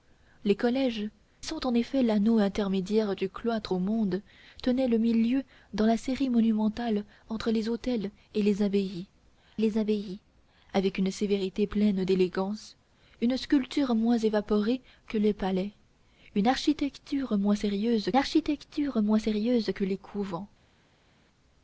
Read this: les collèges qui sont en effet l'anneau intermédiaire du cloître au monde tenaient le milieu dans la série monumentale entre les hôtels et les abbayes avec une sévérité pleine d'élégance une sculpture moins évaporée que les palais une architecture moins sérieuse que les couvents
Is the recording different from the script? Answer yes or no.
yes